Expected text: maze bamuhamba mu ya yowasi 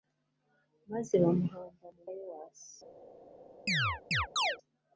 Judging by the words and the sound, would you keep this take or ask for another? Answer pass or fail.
fail